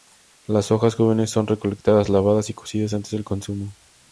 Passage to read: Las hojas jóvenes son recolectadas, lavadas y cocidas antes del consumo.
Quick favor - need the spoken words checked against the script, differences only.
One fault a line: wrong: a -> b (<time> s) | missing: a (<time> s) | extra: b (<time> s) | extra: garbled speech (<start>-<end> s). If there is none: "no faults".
no faults